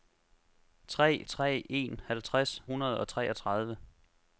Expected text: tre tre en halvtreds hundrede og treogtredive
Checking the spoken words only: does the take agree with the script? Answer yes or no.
yes